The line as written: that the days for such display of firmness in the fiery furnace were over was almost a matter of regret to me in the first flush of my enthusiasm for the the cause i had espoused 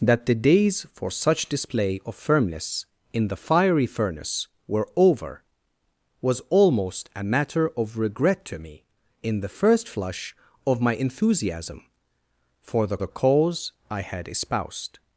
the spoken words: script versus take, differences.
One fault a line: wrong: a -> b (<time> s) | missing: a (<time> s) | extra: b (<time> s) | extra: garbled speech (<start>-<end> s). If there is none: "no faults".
no faults